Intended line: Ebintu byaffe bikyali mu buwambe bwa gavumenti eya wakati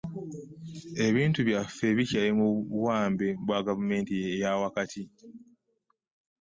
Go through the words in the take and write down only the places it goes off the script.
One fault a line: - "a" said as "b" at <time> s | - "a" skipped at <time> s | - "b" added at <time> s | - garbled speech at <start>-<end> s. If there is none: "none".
none